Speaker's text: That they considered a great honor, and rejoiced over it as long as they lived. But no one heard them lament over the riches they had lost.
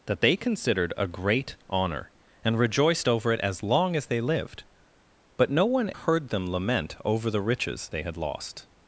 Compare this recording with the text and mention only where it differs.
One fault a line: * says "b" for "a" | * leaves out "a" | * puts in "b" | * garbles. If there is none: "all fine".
all fine